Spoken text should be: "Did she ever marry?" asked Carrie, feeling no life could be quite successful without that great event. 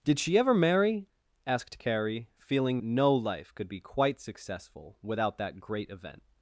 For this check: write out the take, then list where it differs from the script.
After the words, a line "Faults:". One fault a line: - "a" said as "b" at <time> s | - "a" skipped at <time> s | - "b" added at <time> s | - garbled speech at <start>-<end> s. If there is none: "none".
"Did she ever marry?" asked Carrie, feeling no life could be quite successful without that great event.
Faults:
none